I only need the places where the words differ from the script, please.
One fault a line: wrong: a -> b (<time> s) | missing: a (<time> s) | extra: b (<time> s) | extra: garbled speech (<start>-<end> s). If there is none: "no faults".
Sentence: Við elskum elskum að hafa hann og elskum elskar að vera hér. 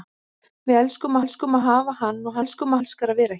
no faults